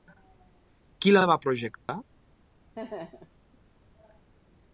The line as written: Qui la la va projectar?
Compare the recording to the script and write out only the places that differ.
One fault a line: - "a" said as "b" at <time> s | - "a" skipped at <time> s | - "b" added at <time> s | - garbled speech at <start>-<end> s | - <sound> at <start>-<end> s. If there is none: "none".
- dropout at 1.8-1.9 s
- laugh at 2.7-3.4 s